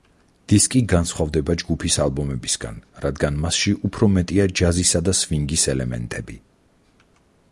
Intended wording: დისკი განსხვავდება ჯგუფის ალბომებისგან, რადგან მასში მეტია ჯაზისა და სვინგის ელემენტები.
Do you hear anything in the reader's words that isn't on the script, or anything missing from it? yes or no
yes